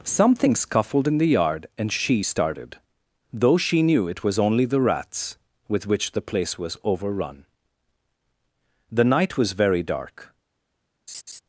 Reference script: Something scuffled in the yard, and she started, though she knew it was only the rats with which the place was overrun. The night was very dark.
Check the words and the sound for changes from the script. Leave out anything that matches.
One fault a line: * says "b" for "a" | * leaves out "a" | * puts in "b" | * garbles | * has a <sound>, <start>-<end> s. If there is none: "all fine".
* has a laugh, 11.1-11.4 s